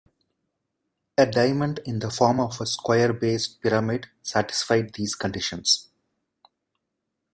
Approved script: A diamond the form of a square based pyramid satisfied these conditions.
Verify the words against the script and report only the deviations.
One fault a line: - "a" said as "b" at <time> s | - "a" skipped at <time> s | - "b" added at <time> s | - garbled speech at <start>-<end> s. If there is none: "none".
- "in" added at 1.9 s